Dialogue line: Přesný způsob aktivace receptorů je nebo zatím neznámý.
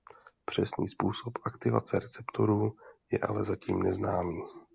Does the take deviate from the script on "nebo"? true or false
true